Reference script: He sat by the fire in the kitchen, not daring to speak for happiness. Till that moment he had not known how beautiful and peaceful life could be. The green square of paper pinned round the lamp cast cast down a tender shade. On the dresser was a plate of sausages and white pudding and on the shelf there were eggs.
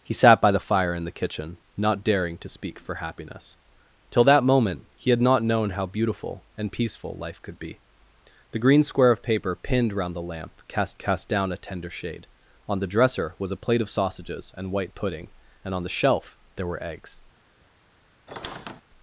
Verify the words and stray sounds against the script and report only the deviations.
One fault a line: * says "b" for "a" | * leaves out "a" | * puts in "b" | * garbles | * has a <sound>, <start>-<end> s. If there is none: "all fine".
* has a squeak, 18.3-18.8 s